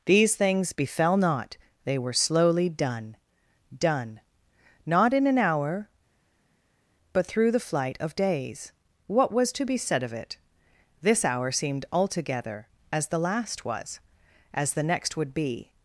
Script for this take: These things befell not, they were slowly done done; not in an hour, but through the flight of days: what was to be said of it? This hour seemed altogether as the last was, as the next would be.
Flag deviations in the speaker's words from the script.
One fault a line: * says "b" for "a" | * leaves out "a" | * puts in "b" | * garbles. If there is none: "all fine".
all fine